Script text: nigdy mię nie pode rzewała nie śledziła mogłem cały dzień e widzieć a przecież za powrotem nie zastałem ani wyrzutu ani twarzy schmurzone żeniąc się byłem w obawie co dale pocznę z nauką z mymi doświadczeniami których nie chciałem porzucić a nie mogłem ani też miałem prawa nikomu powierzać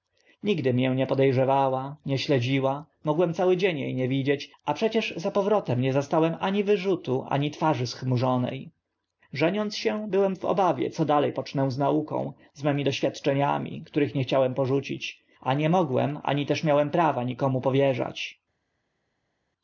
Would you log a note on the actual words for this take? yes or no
yes